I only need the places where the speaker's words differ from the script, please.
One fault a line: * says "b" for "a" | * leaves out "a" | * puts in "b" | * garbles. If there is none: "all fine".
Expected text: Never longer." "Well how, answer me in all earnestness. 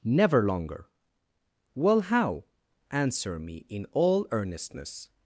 all fine